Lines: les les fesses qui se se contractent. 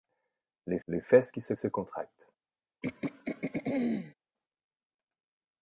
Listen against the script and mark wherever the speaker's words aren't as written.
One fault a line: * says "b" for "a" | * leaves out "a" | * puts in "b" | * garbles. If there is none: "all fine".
all fine